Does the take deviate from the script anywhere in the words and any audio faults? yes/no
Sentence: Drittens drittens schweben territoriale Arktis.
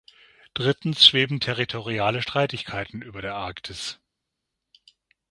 yes